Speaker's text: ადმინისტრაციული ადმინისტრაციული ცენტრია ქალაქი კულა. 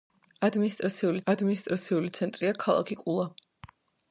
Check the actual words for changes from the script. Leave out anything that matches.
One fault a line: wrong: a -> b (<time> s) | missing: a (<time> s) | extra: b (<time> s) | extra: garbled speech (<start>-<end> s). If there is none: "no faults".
no faults